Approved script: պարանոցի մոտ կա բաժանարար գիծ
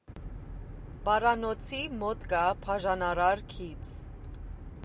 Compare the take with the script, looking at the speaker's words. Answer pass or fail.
pass